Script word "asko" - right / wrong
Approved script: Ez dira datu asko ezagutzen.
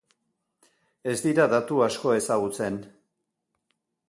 right